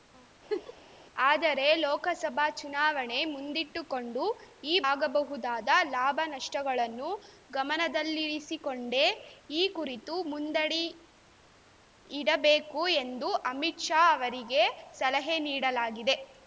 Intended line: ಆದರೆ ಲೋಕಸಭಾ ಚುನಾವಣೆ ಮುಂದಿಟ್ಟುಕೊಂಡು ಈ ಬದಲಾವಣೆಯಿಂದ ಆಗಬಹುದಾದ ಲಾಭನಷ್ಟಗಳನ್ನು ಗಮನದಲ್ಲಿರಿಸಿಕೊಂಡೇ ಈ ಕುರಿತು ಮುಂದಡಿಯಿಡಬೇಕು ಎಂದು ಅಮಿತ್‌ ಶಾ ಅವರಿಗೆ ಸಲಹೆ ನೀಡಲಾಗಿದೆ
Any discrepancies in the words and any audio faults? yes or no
yes